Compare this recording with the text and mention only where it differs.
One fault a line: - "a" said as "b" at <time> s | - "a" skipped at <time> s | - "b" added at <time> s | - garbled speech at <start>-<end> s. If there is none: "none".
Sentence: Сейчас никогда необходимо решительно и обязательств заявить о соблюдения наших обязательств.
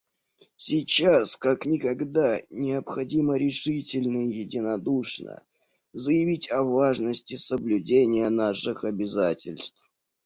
- "как" added at 1.4 s
- "обязательств" said as "единодушно" at 4.3 s
- "важности" added at 6.6 s